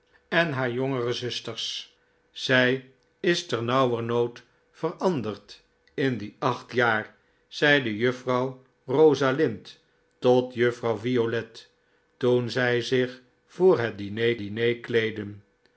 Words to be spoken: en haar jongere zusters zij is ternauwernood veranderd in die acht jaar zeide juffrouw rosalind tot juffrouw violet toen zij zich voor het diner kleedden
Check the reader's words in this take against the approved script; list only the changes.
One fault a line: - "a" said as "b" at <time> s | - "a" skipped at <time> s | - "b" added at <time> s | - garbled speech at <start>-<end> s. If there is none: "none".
- "diner" added at 14.4 s